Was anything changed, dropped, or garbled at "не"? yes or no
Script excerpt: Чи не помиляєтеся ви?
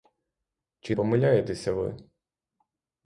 yes